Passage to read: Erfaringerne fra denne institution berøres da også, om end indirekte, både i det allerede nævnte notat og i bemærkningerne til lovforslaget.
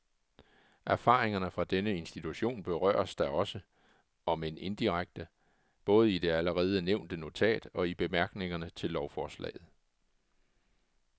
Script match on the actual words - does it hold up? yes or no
yes